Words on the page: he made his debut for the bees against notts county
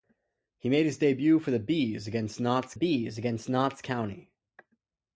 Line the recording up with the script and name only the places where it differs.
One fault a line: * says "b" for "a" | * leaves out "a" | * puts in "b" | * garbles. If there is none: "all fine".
* puts in "bees against notts"